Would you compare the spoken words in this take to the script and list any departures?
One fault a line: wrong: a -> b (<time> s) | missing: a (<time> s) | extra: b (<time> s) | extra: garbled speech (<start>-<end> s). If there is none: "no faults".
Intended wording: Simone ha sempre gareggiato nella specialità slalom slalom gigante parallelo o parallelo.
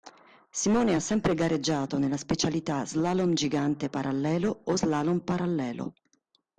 missing: slalom (3.3 s)
extra: slalom (4.7 s)